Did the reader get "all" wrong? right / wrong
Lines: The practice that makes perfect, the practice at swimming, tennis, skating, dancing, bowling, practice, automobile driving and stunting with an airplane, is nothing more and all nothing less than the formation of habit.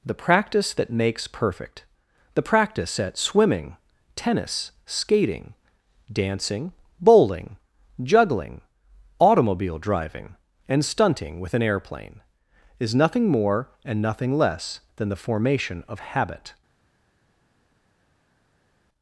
wrong